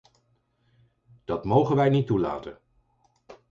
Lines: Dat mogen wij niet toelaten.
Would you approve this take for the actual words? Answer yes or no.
yes